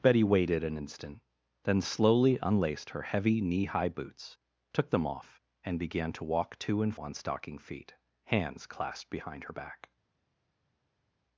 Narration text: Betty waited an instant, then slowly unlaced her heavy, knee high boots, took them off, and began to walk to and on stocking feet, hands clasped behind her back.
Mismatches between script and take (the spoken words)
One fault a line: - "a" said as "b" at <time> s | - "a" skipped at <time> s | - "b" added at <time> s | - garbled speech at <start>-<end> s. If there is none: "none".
none